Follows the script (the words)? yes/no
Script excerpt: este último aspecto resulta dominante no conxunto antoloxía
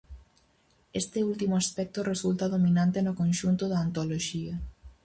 no